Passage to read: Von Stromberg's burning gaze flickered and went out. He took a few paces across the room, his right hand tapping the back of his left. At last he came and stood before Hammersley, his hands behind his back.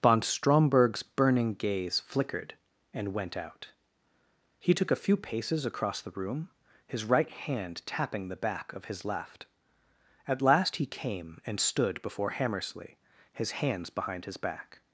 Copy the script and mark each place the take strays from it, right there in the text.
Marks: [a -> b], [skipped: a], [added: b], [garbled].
Von Stromberg's burning gaze flickered and went out. He took a few paces across the room, his right hand tapping the back of his left. At last he came and stood before Hammersley, his hands behind his back.